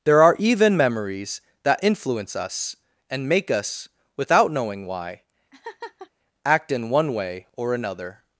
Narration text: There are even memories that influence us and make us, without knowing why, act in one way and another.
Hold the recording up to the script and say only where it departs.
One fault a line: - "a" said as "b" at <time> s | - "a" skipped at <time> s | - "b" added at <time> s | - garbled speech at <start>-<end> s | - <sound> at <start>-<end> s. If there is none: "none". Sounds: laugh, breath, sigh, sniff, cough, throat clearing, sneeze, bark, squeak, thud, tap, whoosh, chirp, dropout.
- laugh at 5.5-6.1 s
- "and" said as "or" at 7.6 s